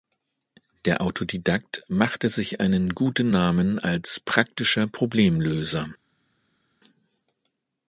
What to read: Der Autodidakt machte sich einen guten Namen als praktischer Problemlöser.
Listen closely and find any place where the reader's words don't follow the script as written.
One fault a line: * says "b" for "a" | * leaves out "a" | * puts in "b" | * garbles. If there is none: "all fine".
all fine